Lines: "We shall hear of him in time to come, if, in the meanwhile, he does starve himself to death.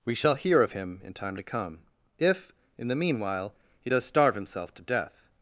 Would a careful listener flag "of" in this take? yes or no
no